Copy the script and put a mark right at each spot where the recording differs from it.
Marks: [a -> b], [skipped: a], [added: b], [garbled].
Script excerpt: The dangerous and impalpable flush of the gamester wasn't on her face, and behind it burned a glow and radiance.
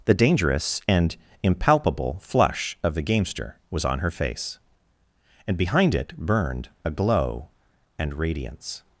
The dangerous and impalpable flush of the gamester [wasn't -> was] on her face, and behind it burned a glow and radiance.